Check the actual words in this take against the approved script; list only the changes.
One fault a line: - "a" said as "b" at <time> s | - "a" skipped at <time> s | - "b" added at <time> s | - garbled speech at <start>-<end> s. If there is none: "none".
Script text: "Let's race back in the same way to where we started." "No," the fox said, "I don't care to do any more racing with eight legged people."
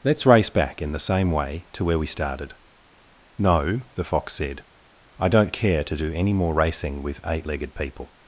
none